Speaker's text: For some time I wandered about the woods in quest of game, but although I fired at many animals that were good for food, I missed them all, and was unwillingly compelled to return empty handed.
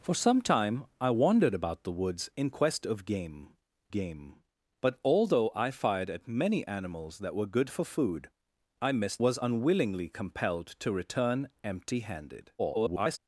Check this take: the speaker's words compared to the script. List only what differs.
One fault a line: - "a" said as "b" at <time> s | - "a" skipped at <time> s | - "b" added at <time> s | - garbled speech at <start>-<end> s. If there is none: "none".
- "game" added at 3.9 s
- "them all and" skipped at 9.2 s
- garbled speech at 12.6-13.2 s